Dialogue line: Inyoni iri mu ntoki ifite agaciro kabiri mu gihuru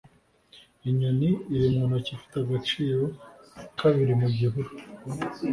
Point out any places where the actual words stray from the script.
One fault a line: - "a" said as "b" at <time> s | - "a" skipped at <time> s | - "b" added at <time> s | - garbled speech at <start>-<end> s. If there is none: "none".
none